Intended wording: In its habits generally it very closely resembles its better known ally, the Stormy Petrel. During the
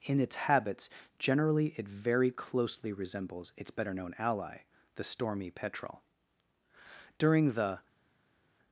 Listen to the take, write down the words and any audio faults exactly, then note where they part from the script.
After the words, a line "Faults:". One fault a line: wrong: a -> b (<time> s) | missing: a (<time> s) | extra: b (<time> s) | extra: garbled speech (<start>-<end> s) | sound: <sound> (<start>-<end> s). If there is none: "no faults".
In its habits generally it very closely resembles its better known ally, the Stormy Petrel. During the
Faults:
no faults